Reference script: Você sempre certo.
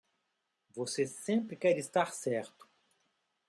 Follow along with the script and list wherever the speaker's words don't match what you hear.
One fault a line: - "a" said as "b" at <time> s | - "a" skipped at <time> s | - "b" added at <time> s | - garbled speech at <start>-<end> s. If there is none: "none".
- "quer estar" added at 1.6 s